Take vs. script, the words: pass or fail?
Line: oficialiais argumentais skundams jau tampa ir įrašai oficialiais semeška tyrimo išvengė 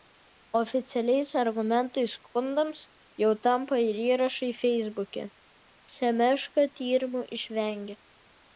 fail